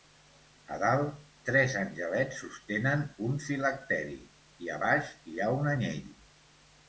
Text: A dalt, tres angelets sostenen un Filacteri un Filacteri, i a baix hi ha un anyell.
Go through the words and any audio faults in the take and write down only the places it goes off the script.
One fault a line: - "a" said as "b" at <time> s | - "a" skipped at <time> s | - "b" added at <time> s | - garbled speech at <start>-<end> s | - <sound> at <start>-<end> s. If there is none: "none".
- "un Filacteri" skipped at 4.2 s